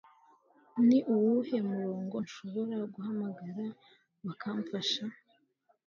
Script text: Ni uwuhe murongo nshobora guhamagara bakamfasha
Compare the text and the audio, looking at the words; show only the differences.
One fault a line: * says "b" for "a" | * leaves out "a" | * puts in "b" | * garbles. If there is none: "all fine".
all fine